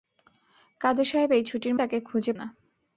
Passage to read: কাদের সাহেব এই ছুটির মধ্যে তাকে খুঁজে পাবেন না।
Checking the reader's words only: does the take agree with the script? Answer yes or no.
no